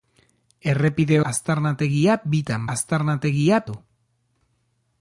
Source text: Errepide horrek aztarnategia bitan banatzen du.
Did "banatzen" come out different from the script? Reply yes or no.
yes